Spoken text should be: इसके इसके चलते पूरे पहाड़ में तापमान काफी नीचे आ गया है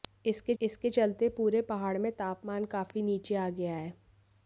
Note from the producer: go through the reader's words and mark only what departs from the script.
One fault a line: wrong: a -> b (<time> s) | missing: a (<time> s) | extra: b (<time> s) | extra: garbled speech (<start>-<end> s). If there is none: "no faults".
no faults